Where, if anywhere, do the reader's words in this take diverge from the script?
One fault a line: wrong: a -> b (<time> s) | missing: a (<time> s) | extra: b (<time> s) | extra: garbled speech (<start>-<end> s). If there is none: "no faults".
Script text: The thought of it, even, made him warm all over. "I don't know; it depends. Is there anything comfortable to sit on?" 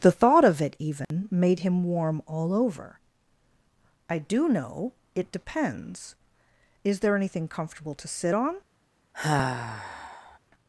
wrong: don't -> do (4.2 s)